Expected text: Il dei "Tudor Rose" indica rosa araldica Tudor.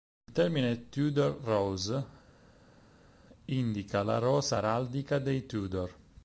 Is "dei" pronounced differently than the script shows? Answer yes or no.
yes